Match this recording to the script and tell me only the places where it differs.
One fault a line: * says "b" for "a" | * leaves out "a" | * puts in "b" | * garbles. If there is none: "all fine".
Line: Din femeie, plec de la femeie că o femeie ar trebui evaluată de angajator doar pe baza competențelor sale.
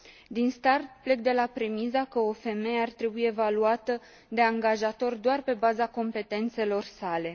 * says "start" for "femeie"
* says "premisa" for "femeie"